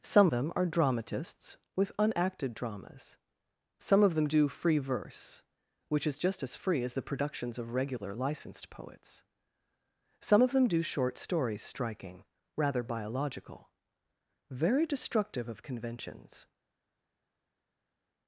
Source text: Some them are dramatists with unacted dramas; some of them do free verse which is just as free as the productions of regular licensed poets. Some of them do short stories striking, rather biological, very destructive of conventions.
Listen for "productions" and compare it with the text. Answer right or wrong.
right